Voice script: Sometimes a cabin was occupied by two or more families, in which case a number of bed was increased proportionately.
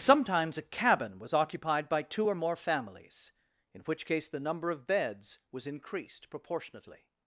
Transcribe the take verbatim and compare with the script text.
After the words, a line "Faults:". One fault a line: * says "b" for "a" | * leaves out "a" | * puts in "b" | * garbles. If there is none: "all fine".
Sometimes a cabin was occupied by two or more families, in which case the number of beds was increased proportionately.
Faults:
* says "the" for "a"
* says "beds" for "bed"